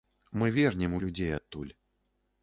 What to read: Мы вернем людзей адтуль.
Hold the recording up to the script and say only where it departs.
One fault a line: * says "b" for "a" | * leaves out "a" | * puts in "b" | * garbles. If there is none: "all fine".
all fine